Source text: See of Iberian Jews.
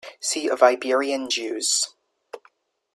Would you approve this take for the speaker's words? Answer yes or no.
yes